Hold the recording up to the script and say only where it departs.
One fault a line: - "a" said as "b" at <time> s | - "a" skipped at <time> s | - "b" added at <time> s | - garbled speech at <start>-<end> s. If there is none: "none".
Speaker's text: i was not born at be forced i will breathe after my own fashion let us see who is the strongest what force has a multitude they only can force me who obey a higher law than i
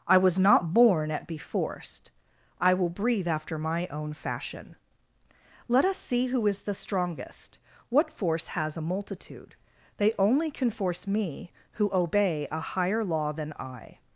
none